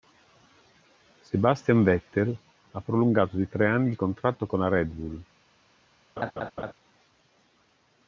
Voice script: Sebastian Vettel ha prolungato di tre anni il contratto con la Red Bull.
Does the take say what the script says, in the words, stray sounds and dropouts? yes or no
no